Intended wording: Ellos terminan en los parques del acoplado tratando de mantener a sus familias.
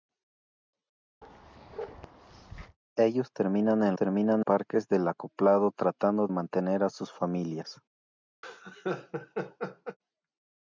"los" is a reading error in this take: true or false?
true